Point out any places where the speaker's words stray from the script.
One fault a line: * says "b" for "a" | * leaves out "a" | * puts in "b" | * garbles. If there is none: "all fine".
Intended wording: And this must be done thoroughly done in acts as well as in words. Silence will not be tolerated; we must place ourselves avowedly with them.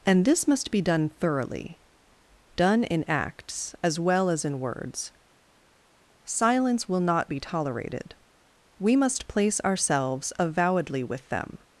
all fine